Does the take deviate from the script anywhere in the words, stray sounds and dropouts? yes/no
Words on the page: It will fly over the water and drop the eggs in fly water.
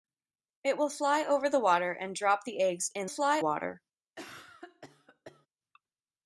yes